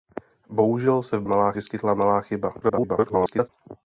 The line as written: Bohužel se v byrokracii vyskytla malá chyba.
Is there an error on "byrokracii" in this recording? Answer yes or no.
yes